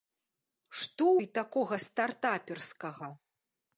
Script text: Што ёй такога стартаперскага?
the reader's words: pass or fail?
pass